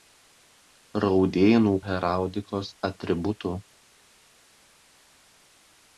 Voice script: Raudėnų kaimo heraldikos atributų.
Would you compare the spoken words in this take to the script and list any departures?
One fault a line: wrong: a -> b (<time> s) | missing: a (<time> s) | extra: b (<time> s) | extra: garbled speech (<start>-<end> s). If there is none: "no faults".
missing: kaimo (1.7 s)